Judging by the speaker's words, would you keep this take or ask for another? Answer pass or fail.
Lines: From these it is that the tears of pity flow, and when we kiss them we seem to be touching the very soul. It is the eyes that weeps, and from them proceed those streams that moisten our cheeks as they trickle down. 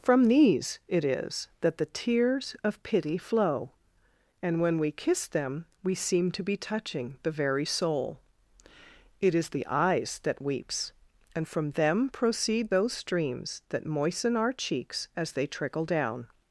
pass